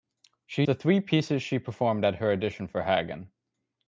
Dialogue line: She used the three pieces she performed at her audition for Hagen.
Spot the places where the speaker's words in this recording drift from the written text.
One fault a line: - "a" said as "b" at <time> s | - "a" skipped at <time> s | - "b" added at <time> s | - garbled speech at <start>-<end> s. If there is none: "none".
- "used" skipped at 0.6 s